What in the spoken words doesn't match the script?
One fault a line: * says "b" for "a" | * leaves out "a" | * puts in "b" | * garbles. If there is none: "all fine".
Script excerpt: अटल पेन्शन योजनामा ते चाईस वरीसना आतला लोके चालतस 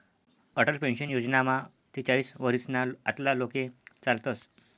all fine